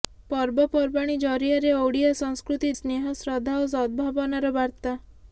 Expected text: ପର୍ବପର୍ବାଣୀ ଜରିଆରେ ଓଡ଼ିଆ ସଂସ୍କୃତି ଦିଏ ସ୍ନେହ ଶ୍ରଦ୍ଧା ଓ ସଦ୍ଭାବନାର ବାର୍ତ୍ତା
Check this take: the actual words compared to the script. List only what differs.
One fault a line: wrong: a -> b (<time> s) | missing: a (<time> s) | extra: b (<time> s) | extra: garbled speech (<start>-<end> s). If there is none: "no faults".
missing: ଦିଏ (2.7 s)